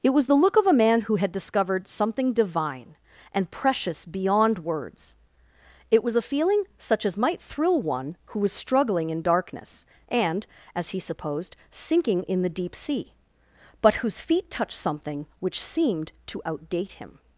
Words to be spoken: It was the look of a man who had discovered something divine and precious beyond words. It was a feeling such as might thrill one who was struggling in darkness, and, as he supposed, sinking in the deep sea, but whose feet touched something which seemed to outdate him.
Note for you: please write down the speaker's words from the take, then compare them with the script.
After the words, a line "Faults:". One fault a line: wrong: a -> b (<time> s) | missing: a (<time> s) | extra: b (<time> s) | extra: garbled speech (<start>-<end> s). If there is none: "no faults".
It was the look of a man who had discovered something divine and precious beyond words. It was a feeling such as might thrill one who was struggling in darkness, and, as he supposed, sinking in the deep sea, but whose feet touched something which seemed to outdate him.
Faults:
no faults